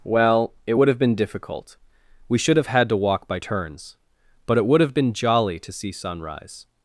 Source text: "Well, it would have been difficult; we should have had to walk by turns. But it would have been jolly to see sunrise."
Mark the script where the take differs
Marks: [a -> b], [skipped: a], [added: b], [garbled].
"Well, it would have been difficult; we should have had to walk by turns. But it would have been jolly to see sunrise."